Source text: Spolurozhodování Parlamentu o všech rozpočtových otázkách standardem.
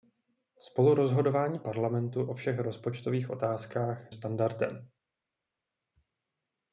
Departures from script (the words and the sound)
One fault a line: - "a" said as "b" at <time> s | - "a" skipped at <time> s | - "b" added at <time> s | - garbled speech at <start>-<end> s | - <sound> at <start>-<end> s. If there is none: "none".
none